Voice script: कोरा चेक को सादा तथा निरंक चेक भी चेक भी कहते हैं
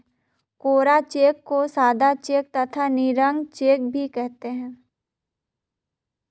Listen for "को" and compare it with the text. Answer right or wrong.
right